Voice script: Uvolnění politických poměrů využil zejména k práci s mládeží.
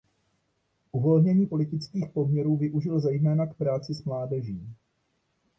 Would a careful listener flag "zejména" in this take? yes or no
no